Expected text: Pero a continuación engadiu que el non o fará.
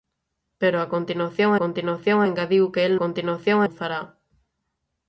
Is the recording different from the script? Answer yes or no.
yes